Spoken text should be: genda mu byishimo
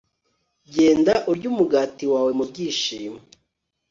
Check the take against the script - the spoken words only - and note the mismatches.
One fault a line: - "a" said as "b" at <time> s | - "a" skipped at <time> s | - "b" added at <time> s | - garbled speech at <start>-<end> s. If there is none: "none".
- "urye umugati wawe" added at 1.3 s